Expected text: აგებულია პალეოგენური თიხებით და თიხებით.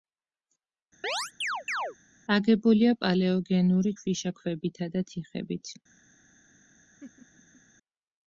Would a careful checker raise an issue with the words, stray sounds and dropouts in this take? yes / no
yes